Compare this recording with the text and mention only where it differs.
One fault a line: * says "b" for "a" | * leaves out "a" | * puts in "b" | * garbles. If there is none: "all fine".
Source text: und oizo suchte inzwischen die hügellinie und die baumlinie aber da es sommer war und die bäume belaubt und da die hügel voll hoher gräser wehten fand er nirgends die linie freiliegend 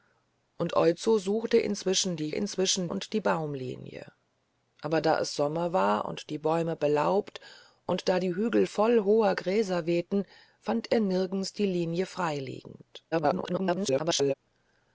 * says "inzwischen" for "hügellinie"
* garbles